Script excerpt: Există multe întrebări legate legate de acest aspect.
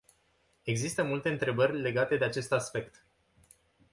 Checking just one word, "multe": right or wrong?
right